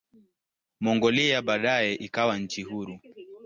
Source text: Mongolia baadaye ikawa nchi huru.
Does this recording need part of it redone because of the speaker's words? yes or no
no